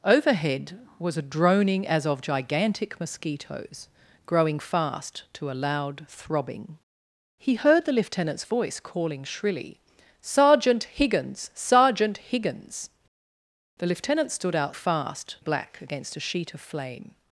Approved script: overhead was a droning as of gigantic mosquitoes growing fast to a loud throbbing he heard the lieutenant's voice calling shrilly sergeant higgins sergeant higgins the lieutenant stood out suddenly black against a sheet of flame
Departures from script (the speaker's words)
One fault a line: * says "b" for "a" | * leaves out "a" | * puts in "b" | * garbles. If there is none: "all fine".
* says "fast" for "suddenly"